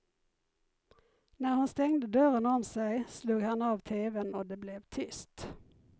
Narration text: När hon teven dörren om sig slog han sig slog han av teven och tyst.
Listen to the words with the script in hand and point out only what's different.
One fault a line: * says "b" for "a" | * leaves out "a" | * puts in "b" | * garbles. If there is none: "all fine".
* says "stängde" for "teven"
* leaves out "sig slog han"
* puts in "det blev"